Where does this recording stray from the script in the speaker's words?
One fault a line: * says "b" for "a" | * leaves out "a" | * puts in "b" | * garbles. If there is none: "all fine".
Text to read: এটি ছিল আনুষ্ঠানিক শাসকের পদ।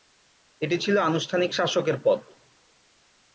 all fine